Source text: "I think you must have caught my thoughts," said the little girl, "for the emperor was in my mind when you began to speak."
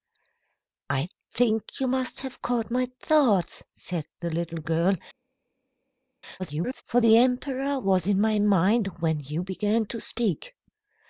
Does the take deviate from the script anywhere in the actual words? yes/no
yes